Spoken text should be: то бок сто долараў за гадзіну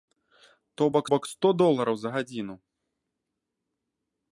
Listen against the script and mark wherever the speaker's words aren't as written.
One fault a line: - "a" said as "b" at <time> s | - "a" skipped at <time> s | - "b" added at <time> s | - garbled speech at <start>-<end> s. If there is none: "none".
- "бок" added at 1.1 s